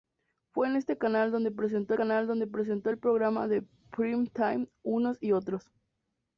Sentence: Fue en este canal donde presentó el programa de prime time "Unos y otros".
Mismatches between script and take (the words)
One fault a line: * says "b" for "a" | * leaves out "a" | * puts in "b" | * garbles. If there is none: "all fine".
* puts in "canal donde presentó"